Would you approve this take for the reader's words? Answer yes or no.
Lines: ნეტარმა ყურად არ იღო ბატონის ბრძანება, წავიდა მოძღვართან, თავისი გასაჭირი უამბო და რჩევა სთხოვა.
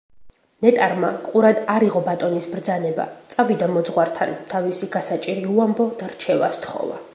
yes